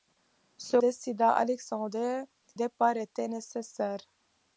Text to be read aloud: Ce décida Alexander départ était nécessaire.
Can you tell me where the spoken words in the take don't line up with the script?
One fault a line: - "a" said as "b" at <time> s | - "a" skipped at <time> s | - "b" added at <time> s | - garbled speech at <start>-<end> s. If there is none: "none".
none